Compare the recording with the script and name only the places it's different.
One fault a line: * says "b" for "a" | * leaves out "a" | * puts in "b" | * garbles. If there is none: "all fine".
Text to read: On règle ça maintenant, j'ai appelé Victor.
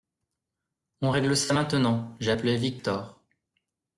all fine